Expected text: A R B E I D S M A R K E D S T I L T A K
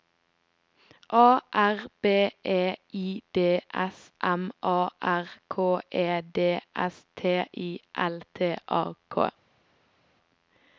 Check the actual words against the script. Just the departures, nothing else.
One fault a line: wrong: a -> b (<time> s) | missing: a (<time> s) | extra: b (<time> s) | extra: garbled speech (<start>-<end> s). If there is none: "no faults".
no faults